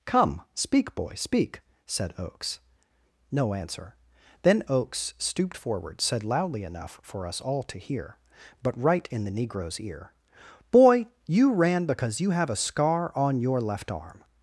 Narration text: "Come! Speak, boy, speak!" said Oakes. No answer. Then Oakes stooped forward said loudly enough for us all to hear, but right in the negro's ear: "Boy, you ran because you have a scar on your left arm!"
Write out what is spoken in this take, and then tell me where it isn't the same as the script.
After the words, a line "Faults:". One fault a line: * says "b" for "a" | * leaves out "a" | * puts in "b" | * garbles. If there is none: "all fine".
"Come! Speak, boy, speak!" said Oakes. No answer. Then Oakes stooped forward said loudly enough for us all to hear, but right in the negro's ear: "Boy, you ran because you have a scar on your left arm!"
Faults:
all fine